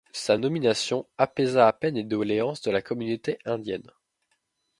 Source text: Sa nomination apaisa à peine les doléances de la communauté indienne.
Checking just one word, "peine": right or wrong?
right